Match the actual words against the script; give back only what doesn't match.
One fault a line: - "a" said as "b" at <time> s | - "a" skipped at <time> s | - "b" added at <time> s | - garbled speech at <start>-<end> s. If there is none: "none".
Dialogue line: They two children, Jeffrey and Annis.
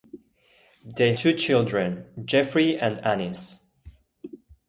none